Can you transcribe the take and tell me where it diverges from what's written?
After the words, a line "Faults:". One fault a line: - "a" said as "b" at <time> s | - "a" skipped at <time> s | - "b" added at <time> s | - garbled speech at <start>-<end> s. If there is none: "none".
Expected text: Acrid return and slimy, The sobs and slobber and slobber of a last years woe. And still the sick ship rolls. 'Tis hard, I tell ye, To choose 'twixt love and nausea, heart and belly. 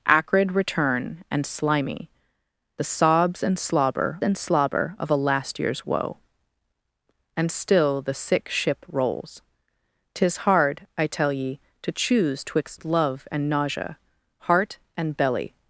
Acrid return and slimy, The sobs and slobber and slobber of a last years woe. And still the sick ship rolls. 'Tis hard, I tell ye, To choose 'twixt love and nausea, heart and belly.
Faults:
none